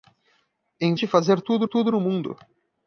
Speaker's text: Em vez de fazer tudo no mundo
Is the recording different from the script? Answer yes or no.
yes